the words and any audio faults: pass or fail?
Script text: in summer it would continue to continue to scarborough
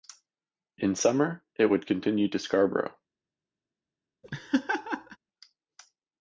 fail